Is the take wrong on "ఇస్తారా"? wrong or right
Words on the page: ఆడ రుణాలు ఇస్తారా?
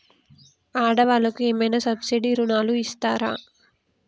right